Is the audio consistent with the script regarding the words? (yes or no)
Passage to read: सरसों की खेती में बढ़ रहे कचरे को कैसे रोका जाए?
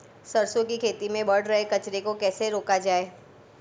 yes